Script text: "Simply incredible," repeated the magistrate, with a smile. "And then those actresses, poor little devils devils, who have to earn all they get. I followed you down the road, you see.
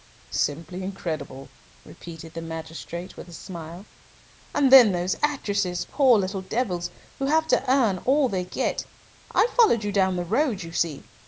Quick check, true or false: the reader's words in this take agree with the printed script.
false